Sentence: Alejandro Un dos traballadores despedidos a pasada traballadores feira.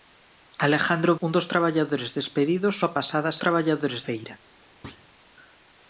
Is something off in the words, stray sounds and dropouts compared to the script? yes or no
yes